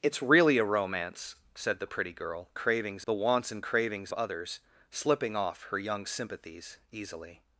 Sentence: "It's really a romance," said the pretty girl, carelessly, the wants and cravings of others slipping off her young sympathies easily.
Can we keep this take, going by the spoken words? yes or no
no